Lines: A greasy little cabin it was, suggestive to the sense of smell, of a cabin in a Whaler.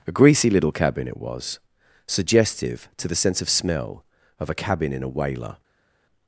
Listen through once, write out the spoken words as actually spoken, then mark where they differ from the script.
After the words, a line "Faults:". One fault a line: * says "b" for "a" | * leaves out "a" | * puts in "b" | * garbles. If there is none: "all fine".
A greasy little cabin it was, suggestive to the sense of smell, of a cabin in a Whaler.
Faults:
all fine